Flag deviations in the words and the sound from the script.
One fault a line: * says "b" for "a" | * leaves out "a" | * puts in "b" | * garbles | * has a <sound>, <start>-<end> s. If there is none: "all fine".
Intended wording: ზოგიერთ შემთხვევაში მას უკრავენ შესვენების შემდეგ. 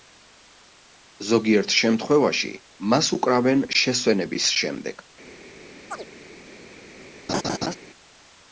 * has a chirp, 5.9-6.1 s
* has a laugh, 7.3-7.8 s